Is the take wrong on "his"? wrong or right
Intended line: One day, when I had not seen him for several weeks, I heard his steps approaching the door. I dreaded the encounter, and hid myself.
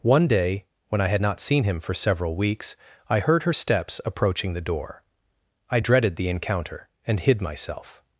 wrong